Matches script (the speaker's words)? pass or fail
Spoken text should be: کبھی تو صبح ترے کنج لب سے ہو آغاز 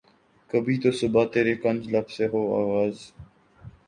pass